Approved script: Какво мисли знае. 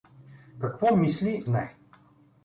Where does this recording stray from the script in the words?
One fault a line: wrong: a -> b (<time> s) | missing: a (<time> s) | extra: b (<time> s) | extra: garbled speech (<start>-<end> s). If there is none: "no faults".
no faults